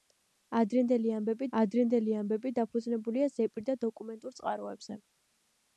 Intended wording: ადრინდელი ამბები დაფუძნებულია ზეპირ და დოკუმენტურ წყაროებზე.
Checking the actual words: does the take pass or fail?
fail